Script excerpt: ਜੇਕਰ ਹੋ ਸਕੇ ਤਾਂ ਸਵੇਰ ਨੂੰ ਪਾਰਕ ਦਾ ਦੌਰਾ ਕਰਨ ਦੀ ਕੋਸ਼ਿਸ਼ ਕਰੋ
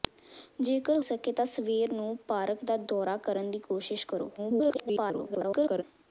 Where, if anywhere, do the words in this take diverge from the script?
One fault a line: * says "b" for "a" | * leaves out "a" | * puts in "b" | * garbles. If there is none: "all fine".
* leaves out "ਹੋ"
* garbles